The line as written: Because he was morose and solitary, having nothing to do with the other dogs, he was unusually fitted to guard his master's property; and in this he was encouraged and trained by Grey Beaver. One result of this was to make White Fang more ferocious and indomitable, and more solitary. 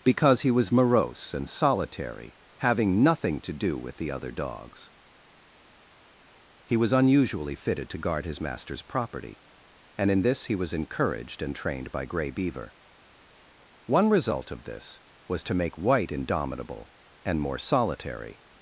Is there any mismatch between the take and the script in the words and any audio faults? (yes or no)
yes